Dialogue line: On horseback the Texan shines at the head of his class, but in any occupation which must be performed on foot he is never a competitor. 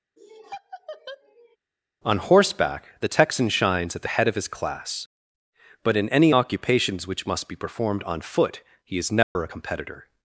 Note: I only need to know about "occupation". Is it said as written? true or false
false